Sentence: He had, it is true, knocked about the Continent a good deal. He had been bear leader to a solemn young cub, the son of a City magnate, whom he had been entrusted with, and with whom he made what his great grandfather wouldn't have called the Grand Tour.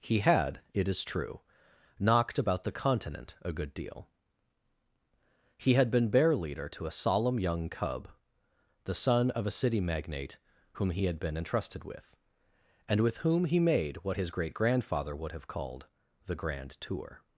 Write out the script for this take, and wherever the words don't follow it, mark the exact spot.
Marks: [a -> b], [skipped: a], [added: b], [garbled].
He had, it is true, knocked about the Continent a good deal. He had been bear leader to a solemn young cub, the son of a City magnate, whom he had been entrusted with, and with whom he made what his great grandfather [wouldn't -> would] have called the Grand Tour.